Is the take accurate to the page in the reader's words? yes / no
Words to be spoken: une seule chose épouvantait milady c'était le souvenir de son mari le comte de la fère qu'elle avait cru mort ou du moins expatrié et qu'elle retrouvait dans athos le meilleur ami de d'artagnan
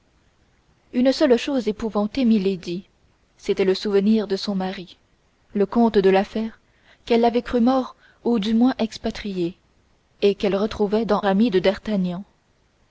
no